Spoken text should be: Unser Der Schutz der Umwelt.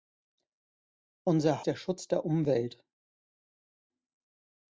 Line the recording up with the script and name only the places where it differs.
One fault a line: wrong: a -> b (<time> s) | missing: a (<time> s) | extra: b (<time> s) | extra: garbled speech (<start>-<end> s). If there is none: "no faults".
no faults